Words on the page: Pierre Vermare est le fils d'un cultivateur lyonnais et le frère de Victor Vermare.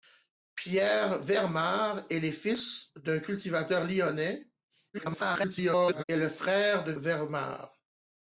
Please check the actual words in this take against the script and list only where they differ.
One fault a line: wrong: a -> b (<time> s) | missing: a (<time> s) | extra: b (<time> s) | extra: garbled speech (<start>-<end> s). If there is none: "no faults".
extra: garbled speech (4.9-6.0 s)
missing: Victor (6.9 s)